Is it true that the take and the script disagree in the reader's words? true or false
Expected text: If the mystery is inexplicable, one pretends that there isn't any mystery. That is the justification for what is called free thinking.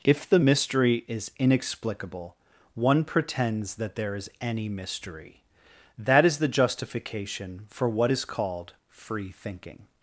true